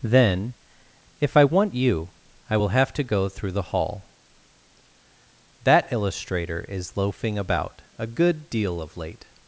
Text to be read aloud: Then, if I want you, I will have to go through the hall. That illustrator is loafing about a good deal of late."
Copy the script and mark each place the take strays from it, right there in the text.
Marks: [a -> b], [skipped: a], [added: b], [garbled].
Then, if I want you, I will have to go through the hall. That illustrator is loafing about a good deal of late."